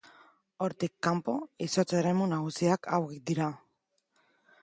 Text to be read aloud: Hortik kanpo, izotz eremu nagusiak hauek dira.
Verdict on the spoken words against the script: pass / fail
pass